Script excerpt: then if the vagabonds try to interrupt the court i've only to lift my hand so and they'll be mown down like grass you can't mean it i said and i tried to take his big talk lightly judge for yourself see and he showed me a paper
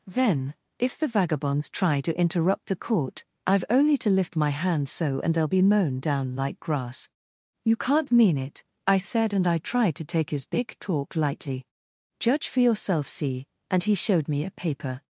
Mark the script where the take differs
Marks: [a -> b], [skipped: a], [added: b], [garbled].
then if the vagabonds try to interrupt the court i've only to lift my hand so and they'll be mown down like grass you can't mean it i said and i tried to take his big talk lightly judge for yourself see and he showed me a paper